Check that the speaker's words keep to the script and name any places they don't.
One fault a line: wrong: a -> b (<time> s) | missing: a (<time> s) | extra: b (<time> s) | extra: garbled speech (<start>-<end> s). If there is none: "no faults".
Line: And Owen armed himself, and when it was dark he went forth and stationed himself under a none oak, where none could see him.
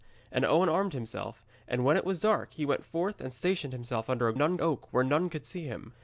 no faults